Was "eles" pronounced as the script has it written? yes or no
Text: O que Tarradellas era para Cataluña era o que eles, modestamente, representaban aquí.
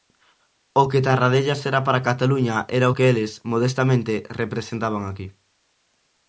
yes